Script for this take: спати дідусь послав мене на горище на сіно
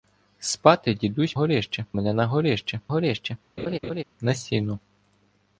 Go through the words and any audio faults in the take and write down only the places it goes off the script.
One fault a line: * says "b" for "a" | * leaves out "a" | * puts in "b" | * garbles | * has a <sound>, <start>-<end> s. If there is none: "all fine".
* says "горище" for "послав"
* puts in "горище"
* has a laugh, 3.6-4.0 s